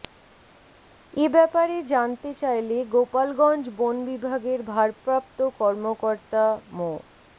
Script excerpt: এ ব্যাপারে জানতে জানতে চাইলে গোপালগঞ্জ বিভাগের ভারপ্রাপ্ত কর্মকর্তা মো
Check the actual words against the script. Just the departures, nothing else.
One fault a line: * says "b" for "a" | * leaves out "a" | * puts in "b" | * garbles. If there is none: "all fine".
* leaves out "জানতে"
* puts in "বন"